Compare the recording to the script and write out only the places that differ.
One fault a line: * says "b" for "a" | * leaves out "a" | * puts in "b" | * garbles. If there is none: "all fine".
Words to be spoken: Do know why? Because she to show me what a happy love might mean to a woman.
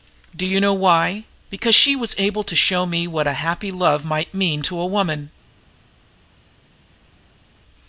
* puts in "you"
* puts in "was able"